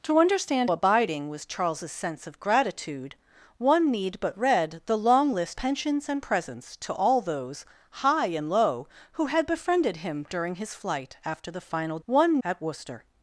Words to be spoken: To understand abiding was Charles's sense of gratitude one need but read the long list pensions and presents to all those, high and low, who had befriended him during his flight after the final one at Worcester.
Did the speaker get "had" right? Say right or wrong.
right